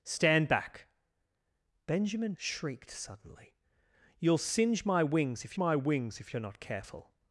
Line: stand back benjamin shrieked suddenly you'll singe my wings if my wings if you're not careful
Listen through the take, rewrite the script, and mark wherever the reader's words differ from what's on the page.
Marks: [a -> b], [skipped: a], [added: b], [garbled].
stand back benjamin shrieked suddenly you'll singe my wings if my wings if you're not careful